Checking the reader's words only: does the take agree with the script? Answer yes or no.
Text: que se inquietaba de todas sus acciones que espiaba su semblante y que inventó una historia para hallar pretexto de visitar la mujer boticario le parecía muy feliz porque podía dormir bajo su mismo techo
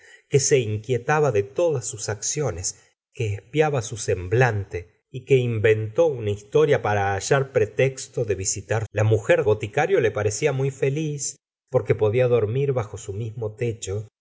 yes